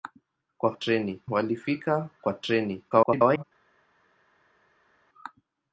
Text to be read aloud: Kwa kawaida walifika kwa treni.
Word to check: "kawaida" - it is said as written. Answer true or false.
false